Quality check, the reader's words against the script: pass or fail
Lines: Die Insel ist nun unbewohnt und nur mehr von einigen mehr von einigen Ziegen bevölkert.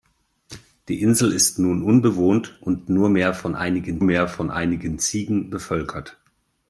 pass